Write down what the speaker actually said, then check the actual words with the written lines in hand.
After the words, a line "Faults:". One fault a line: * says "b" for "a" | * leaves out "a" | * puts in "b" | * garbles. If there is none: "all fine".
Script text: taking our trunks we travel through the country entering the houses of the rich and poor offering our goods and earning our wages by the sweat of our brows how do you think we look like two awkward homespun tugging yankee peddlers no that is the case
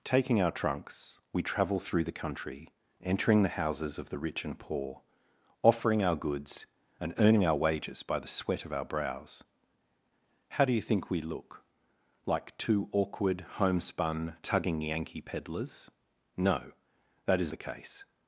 taking our trunks we travel through the country entering the houses of the rich and poor offering our goods and earning our wages by the sweat of our brows how do you think we look like two awkward homespun tugging yankee peddlers no that is the case
Faults:
all fine